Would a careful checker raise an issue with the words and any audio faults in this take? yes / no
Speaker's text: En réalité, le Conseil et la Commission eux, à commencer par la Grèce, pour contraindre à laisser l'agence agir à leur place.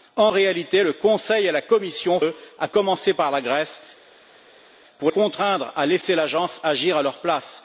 no